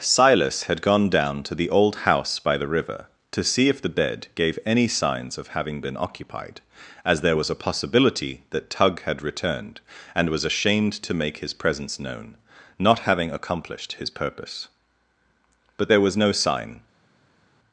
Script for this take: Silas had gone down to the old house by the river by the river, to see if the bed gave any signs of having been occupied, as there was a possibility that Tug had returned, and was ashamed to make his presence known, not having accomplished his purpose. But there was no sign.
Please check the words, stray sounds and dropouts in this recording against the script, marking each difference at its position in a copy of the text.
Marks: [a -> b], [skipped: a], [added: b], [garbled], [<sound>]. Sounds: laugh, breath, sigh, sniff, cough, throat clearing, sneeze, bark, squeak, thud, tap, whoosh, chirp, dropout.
Silas had gone down to the old house by the river [skipped: by the river,] to see if the bed gave any signs of having been occupied, as there was a possibility that Tug had returned, and was ashamed to make his presence known, not having accomplished his purpose. But there was no sign.